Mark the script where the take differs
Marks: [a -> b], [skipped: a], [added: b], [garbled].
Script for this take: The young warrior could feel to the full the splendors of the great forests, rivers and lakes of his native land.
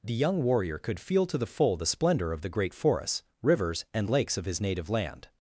The young warrior could feel to the full the [splendors -> splendor] of the great forests, rivers and lakes of his native land.